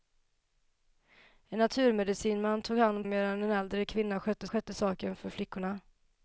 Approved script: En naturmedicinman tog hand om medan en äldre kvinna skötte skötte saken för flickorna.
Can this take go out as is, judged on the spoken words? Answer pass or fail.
pass